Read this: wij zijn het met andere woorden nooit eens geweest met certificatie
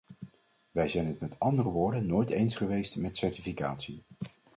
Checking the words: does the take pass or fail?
pass